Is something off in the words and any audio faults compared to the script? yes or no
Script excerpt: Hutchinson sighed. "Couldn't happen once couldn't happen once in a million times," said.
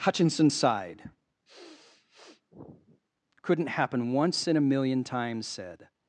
yes